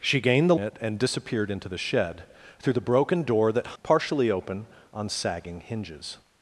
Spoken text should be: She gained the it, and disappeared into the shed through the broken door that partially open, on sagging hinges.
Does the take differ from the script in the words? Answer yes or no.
no